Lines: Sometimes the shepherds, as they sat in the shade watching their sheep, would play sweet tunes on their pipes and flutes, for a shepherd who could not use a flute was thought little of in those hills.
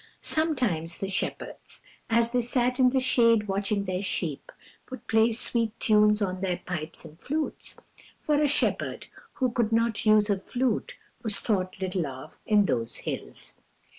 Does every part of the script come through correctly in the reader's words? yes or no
yes